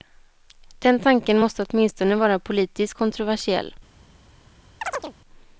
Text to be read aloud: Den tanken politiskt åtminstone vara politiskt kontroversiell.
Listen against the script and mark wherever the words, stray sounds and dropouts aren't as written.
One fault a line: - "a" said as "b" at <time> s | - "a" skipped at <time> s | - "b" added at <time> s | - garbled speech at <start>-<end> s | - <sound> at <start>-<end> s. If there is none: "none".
- "politiskt" said as "måste" at 1.4 s
- chirp at 4.8-5.1 s